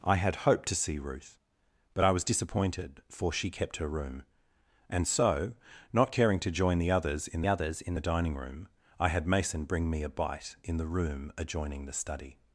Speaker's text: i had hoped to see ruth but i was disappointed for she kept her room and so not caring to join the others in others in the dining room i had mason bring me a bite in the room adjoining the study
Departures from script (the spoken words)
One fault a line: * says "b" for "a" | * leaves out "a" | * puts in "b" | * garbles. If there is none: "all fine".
all fine